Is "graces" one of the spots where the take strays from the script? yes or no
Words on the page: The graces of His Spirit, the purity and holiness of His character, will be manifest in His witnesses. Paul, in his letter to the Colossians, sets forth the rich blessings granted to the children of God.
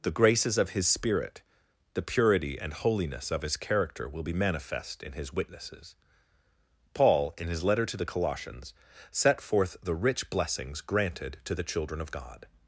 no